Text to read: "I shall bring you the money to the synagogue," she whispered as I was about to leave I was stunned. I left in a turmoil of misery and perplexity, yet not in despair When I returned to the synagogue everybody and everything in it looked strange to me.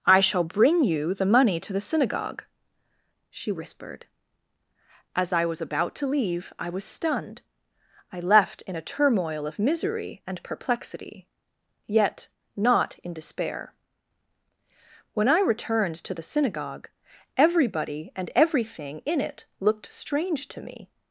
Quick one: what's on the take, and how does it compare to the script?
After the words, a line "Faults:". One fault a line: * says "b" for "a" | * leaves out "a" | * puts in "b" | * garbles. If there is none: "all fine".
"I shall bring you the money to the synagogue," she whispered as I was about to leave I was stunned. I left in a turmoil of misery and perplexity, yet not in despair When I returned to the synagogue everybody and everything in it looked strange to me.
Faults:
all fine